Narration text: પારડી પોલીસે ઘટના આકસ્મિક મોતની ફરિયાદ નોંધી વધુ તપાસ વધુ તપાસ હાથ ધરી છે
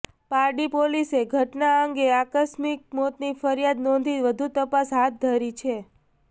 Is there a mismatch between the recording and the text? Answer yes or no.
yes